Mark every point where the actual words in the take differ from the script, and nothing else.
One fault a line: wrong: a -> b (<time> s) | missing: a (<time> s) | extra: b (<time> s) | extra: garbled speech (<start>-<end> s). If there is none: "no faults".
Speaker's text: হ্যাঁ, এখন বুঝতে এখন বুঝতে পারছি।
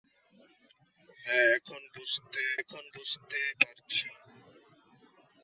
no faults